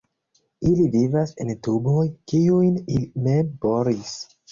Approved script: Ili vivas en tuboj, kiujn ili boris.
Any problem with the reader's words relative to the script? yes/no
yes